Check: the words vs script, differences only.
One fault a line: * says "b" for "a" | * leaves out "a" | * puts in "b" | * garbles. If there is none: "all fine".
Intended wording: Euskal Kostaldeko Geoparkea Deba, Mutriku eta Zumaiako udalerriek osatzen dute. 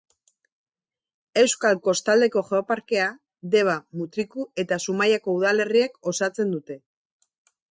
all fine